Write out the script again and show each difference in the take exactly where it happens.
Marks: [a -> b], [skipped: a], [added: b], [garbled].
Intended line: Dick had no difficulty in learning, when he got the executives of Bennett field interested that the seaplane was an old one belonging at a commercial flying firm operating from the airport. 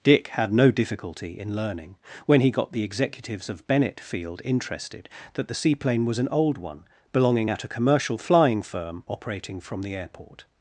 Dick had no difficulty in learning, when he got the executives of Bennett field interested that the seaplane was an old one belonging at a commercial flying firm operating from the airport.